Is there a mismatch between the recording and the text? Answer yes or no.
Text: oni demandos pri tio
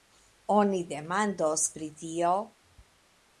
no